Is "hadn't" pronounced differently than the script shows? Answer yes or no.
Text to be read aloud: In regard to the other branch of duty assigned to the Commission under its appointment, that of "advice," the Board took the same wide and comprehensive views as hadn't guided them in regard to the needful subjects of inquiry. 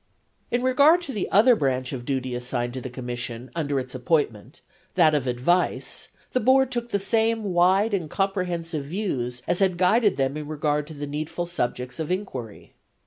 yes